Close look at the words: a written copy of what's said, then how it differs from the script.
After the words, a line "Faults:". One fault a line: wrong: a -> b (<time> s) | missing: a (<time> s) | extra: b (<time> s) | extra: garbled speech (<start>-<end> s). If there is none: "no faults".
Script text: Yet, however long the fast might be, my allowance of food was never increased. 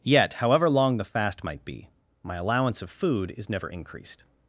Yet, however long the fast might be, my allowance of food is never increased.
Faults:
wrong: was -> is (3.4 s)